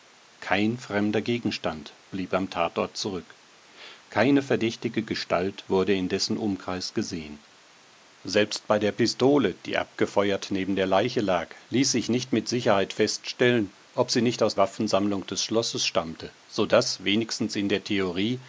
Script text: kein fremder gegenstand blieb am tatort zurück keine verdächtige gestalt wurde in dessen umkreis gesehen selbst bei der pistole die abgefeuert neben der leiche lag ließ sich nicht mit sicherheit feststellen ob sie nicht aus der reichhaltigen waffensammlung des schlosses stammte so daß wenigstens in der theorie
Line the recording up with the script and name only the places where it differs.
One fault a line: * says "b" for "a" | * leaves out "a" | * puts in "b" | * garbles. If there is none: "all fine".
* leaves out "der reichhaltigen"